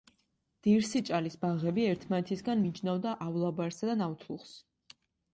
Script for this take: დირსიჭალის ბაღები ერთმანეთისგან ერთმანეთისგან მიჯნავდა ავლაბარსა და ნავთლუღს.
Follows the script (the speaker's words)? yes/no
no